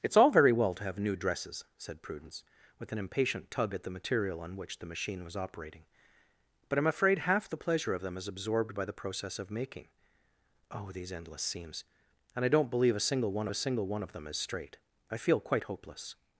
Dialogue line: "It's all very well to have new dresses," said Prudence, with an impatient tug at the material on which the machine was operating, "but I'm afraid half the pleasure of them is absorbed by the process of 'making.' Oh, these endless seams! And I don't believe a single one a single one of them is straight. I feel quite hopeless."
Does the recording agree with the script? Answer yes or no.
yes